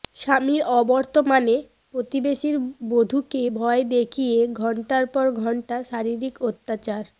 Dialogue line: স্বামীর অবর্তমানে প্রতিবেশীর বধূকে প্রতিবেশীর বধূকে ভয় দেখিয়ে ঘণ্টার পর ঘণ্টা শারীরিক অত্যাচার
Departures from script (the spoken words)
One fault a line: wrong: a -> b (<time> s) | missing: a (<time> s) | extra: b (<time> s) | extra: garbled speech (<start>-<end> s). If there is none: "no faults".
missing: প্রতিবেশীর বধূকে (3.4 s)